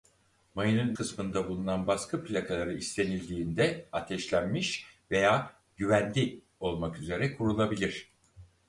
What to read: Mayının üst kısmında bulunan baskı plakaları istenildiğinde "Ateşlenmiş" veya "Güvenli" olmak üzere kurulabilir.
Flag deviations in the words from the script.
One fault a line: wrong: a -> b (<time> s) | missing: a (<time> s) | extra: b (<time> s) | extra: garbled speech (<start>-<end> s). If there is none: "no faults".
missing: üst (0.9 s)